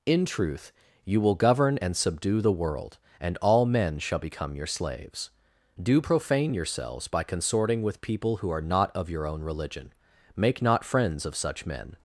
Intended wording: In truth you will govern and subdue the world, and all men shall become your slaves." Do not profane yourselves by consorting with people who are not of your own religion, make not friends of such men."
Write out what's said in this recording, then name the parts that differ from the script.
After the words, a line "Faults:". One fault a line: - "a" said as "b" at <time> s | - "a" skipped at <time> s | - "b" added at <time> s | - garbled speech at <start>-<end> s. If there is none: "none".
In truth you will govern and subdue the world, and all men shall become your slaves." Do profane yourselves by consorting with people who are not of your own religion, make not friends of such men."
Faults:
- "not" skipped at 6.0 s